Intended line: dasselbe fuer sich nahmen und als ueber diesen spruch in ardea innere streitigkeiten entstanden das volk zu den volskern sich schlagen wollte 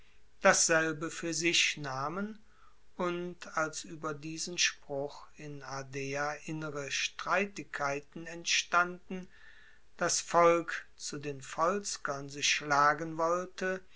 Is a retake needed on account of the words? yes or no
no